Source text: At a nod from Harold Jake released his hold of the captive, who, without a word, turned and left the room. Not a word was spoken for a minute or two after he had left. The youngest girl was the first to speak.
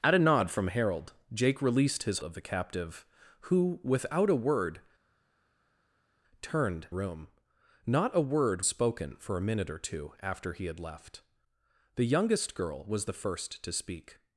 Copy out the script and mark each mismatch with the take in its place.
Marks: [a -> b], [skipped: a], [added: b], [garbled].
At a nod from Harold Jake released his [skipped: hold] of the captive, who, without a word, turned [skipped: and left the] room. Not a word [skipped: was] spoken for a minute or two after he had left. The youngest girl was the first to speak.